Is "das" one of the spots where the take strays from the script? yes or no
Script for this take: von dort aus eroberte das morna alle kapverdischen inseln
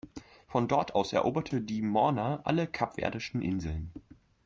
yes